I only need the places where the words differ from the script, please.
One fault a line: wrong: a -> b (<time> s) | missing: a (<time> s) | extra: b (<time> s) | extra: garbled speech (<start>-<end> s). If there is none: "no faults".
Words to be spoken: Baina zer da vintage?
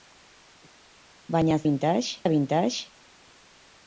wrong: zer -> vintage (1.7 s)